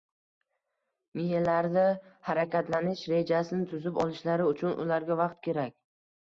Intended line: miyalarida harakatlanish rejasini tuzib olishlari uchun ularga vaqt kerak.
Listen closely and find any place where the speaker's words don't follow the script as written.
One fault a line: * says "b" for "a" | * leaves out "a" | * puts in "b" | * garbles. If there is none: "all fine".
all fine